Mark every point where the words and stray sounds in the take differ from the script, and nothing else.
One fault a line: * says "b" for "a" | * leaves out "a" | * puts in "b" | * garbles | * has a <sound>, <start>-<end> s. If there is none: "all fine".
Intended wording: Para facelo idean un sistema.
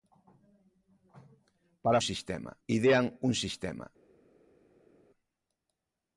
* says "sistema" for "facelo"